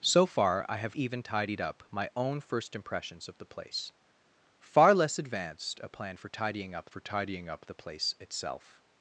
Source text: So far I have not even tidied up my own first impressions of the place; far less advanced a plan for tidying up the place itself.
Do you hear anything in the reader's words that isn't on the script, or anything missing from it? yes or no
yes